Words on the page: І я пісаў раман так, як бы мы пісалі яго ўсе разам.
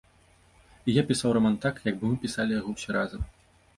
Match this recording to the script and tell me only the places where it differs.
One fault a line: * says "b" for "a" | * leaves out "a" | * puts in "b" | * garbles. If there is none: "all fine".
all fine